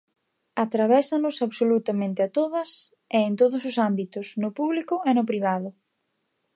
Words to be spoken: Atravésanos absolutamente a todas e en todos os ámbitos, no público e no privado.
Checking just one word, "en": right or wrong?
right